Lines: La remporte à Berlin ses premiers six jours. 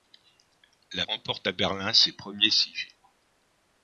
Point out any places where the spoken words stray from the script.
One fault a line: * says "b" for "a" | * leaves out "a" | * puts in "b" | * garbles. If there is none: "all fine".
all fine